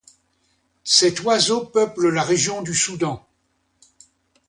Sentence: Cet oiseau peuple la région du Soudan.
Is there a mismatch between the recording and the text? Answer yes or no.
no